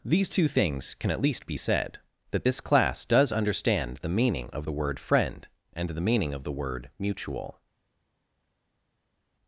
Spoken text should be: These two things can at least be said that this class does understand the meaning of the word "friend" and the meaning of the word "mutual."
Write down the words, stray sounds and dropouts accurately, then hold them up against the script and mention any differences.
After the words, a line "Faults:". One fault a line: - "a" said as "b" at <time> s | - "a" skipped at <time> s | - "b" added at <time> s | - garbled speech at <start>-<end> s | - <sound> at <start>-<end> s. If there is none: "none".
These two things can at least be said that this class does understand the meaning of the word "friend" and the meaning of the word "mutual."
Faults:
none